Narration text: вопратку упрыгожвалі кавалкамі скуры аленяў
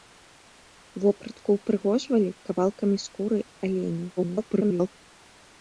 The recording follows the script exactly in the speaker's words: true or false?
false